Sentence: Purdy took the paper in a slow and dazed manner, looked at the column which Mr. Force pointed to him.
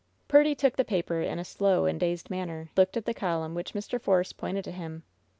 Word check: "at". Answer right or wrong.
right